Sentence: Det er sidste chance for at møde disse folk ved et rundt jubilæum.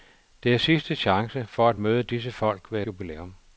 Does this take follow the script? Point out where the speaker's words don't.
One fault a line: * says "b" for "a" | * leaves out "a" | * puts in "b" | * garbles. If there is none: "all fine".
* leaves out "et rundt"